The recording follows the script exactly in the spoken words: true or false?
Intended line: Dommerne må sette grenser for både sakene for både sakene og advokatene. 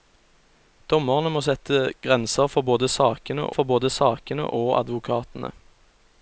true